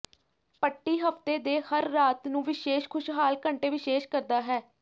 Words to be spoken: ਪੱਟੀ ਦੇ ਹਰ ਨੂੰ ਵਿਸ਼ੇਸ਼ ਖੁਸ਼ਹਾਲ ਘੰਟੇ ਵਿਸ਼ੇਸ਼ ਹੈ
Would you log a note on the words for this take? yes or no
yes